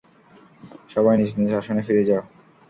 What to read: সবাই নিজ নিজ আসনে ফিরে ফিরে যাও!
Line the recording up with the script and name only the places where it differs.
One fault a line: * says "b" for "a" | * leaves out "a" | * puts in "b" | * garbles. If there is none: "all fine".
* leaves out "ফিরে"